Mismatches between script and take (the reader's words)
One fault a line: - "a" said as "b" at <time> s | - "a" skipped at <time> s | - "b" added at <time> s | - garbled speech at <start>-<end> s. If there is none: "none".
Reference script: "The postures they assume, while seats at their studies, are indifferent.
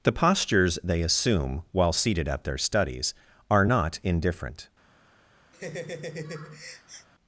- "seats" said as "seated" at 1.9 s
- "not" added at 3.6 s